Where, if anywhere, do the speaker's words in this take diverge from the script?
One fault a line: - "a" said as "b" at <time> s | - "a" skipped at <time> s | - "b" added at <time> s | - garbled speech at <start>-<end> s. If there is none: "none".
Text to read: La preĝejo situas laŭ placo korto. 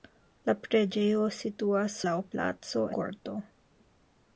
none